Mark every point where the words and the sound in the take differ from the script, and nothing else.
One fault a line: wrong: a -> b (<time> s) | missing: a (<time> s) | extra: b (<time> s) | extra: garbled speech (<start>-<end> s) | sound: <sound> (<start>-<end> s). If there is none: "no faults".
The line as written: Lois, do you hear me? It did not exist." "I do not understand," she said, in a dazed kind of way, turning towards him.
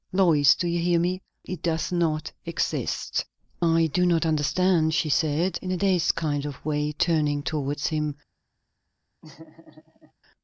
wrong: did -> does (1.6 s)
sound: laugh (9.2-10.1 s)